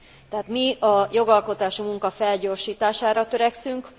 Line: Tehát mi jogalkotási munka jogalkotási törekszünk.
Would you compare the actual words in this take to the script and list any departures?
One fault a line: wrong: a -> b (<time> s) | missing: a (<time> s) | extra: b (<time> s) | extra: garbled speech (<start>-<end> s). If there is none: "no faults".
extra: a (0.8 s)
wrong: jogalkotási -> felgyorsítására (2.1 s)